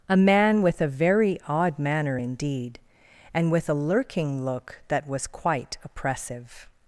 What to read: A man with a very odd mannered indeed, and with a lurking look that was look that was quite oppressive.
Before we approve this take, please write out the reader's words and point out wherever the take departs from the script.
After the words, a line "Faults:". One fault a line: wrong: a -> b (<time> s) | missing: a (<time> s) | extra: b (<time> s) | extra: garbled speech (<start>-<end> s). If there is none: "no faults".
A man with a very odd manner indeed, and with a lurking look that was quite oppressive.
Faults:
wrong: mannered -> manner (1.8 s)
missing: look that was (5.3 s)